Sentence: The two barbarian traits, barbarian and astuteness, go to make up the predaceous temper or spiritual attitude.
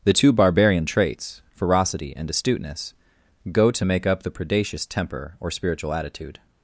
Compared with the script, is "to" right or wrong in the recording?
right